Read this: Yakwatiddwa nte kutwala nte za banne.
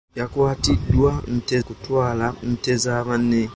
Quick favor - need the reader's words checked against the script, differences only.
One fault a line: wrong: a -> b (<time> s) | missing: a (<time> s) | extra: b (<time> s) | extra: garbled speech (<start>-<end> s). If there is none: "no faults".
no faults